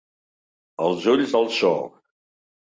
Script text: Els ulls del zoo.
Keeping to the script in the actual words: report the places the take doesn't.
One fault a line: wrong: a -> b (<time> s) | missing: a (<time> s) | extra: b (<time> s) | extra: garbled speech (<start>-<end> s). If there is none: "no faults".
no faults